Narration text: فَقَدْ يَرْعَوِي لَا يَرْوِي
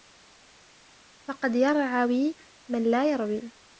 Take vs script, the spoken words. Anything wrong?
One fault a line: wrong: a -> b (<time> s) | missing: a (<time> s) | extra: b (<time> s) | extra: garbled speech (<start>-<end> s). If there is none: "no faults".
extra: مَنْ (2.7 s)